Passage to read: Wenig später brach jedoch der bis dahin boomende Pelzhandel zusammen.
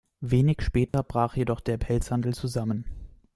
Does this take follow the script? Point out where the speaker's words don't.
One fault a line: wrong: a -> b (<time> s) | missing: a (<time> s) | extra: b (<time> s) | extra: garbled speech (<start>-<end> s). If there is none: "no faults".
missing: bis dahin boomende (1.8 s)